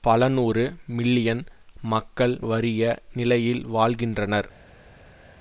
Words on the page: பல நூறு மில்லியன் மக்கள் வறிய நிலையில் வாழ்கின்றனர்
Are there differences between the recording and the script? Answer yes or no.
no